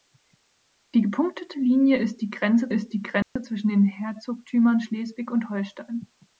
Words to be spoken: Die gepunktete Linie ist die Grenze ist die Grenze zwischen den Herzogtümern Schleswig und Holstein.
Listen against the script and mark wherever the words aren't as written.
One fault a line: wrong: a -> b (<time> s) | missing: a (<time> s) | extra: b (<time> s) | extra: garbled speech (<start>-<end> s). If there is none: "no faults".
no faults